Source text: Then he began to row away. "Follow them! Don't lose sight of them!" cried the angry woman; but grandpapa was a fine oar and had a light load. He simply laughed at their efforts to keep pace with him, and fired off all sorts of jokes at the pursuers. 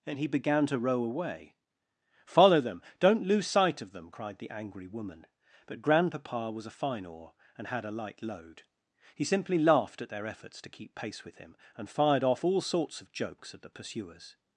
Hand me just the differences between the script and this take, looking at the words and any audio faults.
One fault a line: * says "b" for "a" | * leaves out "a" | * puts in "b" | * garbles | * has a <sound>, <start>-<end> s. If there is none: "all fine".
* says "And" for "Then"